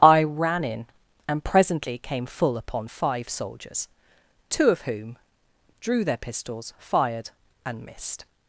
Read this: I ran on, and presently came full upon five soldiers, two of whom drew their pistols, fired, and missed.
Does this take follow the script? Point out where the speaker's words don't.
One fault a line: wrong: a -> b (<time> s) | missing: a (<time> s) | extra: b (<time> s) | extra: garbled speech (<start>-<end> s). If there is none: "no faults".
wrong: on -> in (0.6 s)